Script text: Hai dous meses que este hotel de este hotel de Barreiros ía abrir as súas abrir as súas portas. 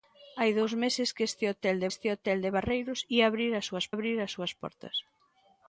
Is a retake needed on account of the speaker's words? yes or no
no